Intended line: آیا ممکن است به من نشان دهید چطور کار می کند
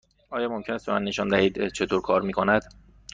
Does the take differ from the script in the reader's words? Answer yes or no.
no